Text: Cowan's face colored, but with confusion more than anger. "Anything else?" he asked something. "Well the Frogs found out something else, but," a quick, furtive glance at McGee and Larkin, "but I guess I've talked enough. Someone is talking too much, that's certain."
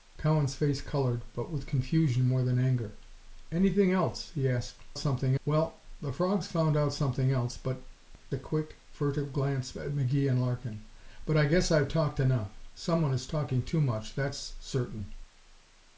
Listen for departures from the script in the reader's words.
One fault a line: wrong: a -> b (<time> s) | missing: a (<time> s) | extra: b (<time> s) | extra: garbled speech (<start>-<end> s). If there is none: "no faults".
no faults